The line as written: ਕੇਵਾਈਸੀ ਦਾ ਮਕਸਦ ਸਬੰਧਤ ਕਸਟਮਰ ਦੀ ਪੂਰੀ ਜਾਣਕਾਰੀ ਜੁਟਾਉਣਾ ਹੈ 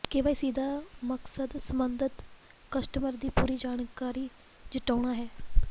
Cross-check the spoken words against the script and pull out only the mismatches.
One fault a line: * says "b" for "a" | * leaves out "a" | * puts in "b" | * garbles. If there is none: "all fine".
all fine